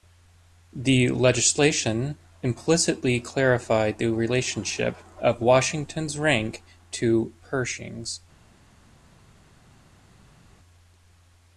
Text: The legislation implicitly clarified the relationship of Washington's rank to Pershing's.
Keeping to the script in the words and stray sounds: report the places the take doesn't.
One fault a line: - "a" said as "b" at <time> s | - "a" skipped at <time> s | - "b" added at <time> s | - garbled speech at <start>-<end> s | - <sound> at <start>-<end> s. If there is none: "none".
none